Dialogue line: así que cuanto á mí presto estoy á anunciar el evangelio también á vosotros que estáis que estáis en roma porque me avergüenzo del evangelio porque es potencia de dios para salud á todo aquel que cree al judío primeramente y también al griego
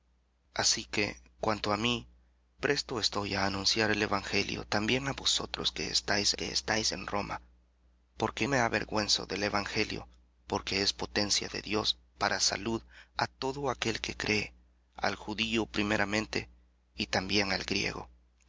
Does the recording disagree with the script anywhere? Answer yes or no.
no